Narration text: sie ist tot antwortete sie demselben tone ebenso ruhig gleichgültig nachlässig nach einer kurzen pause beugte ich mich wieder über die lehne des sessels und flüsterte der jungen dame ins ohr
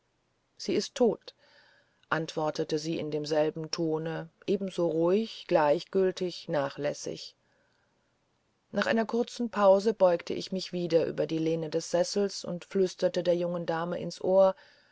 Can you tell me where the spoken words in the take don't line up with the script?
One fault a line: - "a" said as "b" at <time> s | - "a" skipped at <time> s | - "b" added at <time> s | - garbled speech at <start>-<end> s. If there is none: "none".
- "in" added at 3.0 s